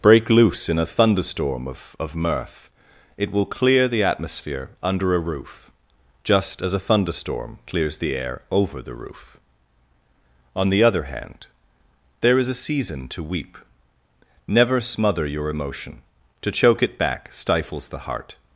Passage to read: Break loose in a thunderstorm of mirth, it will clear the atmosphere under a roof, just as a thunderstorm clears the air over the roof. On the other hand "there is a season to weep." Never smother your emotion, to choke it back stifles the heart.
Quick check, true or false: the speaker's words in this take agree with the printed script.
false